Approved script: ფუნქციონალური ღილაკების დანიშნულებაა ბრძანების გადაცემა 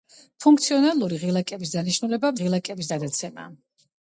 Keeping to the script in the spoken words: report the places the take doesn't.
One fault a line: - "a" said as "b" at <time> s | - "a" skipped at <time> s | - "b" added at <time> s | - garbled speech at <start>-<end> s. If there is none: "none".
- "ბრძანების" said as "ღილაკების" at 2.4 s